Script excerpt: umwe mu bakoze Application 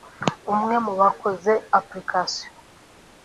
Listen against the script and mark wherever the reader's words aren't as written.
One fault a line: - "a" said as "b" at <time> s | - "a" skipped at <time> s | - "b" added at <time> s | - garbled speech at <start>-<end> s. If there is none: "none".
none